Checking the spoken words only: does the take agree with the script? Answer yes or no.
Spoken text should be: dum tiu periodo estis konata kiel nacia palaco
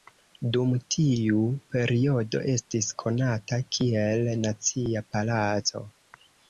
yes